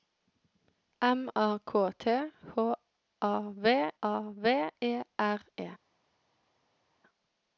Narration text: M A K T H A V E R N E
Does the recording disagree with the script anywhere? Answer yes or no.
yes